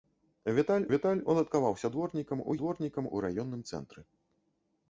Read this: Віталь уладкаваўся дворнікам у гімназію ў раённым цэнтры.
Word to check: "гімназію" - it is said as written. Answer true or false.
false